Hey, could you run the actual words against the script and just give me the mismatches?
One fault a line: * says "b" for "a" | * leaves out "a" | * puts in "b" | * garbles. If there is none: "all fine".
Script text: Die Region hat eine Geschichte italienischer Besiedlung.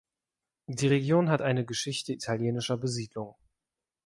all fine